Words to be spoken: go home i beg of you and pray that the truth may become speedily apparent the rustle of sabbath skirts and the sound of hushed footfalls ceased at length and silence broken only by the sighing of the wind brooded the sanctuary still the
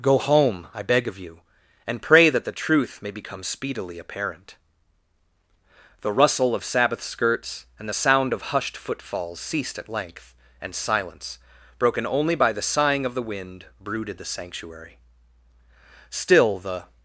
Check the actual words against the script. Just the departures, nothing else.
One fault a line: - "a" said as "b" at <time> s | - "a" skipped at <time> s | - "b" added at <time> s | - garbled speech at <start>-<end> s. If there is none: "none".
none